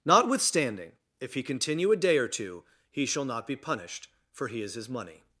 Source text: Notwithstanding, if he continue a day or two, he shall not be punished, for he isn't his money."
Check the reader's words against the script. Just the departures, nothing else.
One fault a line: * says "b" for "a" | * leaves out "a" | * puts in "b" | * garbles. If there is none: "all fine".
* says "is" for "isn't"